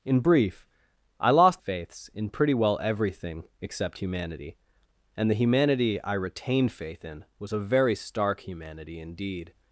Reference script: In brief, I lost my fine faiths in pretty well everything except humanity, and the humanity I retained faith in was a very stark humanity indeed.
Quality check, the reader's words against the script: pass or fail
fail